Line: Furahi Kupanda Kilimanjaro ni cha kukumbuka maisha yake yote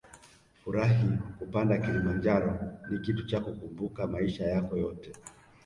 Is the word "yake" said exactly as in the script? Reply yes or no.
no